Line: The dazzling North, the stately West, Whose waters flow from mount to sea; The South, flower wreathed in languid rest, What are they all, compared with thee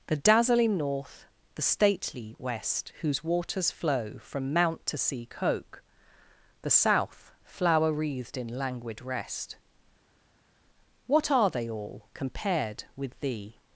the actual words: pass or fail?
fail